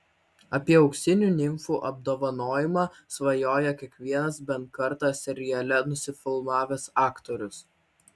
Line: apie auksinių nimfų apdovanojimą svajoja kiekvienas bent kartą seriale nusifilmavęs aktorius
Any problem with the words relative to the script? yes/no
no